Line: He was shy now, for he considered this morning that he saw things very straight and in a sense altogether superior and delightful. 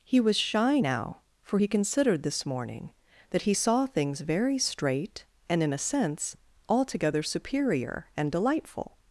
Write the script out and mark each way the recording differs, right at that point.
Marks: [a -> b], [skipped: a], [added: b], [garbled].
He was shy now, for he considered this morning that he saw things very straight and in a sense altogether superior and delightful.